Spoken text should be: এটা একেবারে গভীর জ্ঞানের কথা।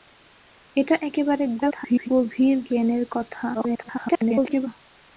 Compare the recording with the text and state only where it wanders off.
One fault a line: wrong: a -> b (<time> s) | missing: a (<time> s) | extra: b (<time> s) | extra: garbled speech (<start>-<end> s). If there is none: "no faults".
extra: garbled speech (1.6-2.1 s)
extra: garbled speech (3.5-4.7 s)